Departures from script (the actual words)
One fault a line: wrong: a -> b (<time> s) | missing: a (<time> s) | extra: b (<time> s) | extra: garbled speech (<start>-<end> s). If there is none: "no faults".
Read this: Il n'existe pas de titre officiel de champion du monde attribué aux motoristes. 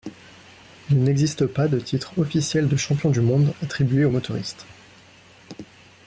no faults